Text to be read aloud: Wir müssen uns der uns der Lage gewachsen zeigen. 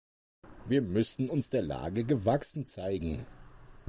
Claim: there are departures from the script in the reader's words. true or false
true